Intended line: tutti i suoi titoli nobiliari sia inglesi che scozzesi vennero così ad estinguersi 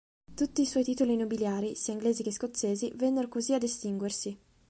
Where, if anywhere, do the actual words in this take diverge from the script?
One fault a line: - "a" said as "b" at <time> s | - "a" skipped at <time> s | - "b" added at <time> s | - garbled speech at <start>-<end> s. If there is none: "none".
none